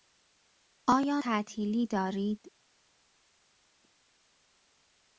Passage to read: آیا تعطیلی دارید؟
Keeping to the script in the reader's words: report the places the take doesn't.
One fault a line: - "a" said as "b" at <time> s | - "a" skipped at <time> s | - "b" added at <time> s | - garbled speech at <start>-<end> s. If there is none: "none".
none